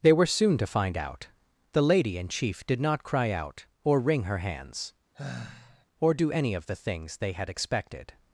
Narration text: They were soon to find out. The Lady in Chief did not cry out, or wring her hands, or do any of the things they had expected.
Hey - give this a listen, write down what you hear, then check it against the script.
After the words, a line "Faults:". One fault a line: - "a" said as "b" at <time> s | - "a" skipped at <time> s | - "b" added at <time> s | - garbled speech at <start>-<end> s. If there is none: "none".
They were soon to find out. The Lady in Chief did not cry out, or wring her hands, or do any of the things they had expected.
Faults:
none